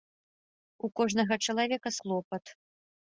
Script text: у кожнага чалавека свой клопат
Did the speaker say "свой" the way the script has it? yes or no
no